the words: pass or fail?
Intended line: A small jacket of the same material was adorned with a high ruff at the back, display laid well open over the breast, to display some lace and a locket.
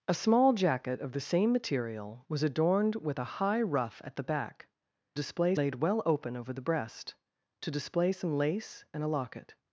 pass